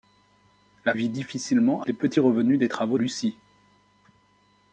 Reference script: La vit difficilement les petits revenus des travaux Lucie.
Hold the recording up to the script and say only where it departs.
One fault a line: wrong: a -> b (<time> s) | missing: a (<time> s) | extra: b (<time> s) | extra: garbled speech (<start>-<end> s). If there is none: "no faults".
no faults